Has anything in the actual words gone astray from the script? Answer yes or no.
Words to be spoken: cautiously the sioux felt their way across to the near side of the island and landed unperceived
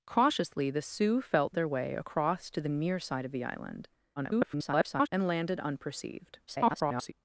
yes